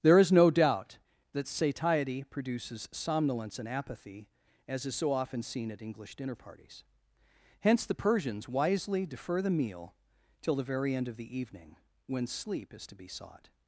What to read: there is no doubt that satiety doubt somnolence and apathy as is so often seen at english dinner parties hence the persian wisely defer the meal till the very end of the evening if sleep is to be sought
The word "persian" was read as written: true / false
false